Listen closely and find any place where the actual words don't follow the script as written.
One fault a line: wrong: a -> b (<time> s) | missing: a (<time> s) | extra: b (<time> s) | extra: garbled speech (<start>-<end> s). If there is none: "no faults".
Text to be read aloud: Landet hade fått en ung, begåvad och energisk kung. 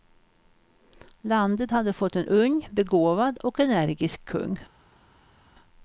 no faults